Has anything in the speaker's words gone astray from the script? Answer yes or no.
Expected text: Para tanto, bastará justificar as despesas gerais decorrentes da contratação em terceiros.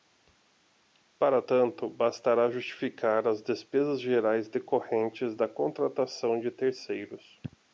yes